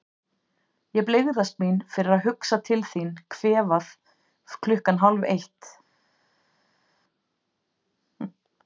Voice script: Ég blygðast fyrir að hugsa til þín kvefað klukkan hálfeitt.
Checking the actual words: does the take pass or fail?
fail